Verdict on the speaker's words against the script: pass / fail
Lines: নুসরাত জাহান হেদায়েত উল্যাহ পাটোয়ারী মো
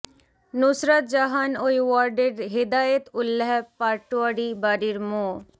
fail